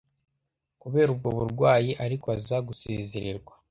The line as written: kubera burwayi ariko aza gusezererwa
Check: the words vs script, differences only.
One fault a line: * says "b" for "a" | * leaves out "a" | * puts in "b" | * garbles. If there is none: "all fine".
* puts in "ubwo"